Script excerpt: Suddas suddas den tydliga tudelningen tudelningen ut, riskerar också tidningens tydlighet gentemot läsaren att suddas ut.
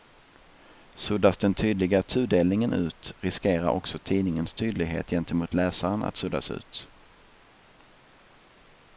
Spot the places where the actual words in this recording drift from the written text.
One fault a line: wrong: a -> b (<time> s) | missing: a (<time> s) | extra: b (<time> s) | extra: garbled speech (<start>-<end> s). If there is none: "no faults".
missing: suddas (1.4 s)
missing: tudelningen (2.7 s)